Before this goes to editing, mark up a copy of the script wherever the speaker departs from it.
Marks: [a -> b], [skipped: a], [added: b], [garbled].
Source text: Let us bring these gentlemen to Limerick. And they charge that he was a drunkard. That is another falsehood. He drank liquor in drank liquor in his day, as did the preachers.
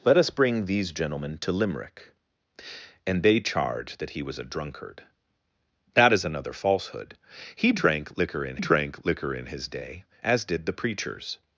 Let us bring these gentlemen to Limerick. And they charge that he was a drunkard. That is another falsehood. He drank liquor in drank liquor in his day, as did the preachers.